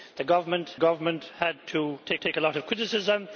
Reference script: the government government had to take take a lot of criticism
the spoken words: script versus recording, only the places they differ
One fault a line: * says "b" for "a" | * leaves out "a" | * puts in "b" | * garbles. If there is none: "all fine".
all fine